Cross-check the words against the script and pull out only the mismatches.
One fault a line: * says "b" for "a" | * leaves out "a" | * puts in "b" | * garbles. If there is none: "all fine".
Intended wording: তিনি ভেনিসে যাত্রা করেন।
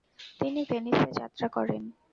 all fine